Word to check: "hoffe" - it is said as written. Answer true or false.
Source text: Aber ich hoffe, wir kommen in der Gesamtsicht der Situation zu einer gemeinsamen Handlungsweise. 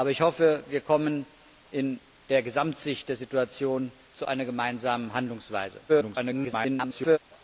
true